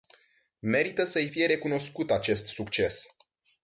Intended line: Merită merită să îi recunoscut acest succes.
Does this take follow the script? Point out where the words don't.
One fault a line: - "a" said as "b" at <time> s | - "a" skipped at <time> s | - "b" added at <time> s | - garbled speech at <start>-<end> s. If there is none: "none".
- "merită" skipped at 1.0 s
- "fie" added at 1.2 s